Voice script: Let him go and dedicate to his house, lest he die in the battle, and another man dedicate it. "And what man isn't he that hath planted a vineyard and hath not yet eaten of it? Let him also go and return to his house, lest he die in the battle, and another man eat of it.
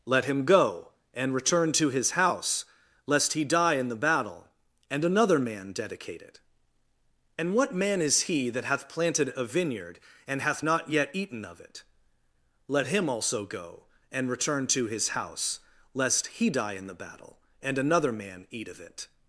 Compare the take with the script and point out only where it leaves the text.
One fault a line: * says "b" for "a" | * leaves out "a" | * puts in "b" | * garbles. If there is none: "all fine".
* says "return" for "dedicate"
* says "is" for "isn't"